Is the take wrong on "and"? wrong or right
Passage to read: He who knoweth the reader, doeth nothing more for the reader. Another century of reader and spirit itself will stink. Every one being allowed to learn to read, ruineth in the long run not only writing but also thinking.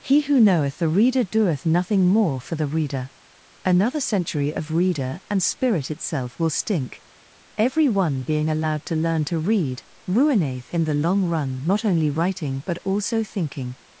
right